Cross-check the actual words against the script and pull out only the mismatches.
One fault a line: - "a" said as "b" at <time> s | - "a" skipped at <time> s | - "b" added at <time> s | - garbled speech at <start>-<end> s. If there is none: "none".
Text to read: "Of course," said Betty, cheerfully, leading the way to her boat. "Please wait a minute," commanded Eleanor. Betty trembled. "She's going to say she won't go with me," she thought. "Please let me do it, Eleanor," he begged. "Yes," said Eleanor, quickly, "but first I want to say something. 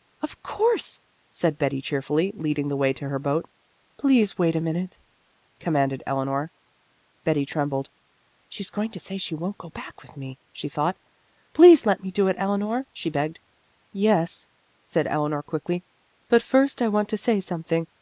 - "back" added at 9.7 s
- "he" said as "she" at 12.9 s